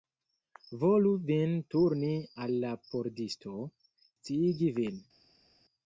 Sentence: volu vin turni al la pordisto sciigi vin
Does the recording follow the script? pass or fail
pass